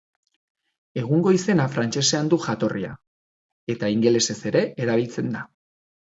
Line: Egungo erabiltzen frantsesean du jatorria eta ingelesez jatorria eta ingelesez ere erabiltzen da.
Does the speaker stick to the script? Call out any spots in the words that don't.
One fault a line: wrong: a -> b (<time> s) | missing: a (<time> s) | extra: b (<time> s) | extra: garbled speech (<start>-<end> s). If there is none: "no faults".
wrong: erabiltzen -> izena (1.4 s)
missing: jatorria eta ingelesez (4.4 s)